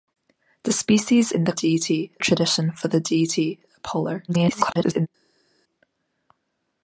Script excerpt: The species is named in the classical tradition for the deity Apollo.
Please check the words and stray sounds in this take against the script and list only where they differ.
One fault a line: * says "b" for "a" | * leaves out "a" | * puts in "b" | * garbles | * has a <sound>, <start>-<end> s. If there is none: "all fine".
* leaves out "is named"
* says "deity" for "classical"
* garbles